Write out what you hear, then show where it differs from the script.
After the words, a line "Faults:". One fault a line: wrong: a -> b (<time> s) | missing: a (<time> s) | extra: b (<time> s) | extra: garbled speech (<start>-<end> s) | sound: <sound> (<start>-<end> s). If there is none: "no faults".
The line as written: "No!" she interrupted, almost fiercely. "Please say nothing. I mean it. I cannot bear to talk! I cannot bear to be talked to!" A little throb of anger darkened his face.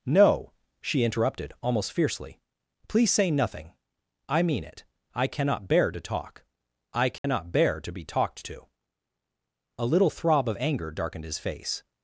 "No!" she interrupted, almost fiercely. "Please say nothing. I mean it. I cannot bear to talk! I cannot bear to be talked to!" A little throb of anger darkened his face.
Faults:
sound: dropout (7.2-7.2 s)